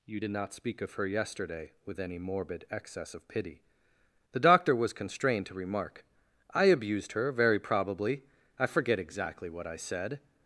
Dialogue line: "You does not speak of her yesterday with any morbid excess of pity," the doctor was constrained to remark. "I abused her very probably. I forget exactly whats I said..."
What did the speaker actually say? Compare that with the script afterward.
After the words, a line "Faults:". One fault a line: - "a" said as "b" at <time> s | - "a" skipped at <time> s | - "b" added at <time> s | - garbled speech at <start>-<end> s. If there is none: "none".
"You did not speak of her yesterday with any morbid excess of pity," the doctor was constrained to remark. "I abused her very probably. I forget exactly what I said..."
Faults:
- "does" said as "did" at 0.2 s
- "whats" said as "what" at 9.5 s